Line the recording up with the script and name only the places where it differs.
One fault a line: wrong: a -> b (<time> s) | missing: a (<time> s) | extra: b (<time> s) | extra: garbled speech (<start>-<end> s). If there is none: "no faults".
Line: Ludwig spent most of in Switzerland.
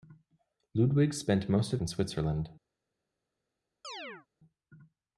no faults